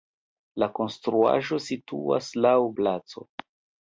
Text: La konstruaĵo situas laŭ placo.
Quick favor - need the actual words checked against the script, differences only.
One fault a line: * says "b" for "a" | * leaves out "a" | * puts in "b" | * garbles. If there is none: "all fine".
all fine